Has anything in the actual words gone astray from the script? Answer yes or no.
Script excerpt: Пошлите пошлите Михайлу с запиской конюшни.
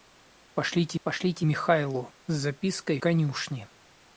no